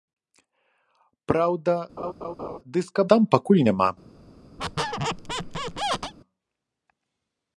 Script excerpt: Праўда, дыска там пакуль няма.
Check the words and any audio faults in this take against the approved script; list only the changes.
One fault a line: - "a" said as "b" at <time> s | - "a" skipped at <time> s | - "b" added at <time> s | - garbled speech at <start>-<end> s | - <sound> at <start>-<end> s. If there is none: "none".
- laugh at 2.0-2.6 s
- squeak at 4.6-6.1 s